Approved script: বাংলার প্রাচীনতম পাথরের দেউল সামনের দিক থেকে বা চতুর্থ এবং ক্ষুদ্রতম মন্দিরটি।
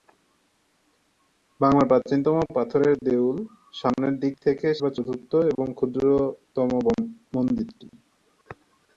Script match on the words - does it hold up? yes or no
yes